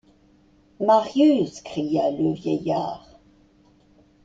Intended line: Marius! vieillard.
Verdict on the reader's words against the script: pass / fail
fail